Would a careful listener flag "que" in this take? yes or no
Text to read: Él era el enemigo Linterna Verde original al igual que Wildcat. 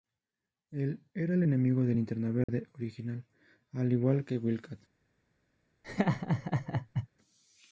no